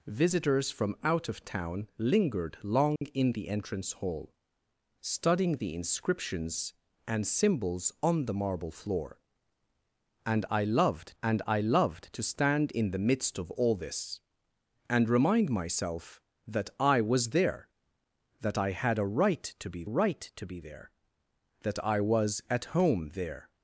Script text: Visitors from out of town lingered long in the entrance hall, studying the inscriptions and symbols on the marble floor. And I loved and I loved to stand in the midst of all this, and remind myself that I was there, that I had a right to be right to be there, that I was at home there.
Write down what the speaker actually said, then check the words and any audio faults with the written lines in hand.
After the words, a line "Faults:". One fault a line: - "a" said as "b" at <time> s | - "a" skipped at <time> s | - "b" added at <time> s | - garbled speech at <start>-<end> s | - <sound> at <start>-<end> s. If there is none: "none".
Visitors from out of town lingered long in the entrance hall, studying the inscriptions and symbols on the marble floor. And I loved and I loved to stand in the midst of all this, and remind myself that I was there, that I had a right to be right to be there, that I was at home there.
Faults:
- dropout at 3.0-3.0 s